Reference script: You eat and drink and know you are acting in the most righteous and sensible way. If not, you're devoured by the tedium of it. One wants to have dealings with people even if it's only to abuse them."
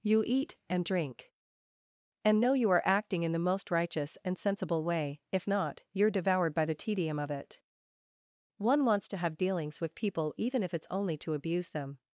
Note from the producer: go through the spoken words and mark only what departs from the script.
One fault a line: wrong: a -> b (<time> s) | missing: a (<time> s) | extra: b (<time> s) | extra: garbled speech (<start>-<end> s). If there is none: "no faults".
no faults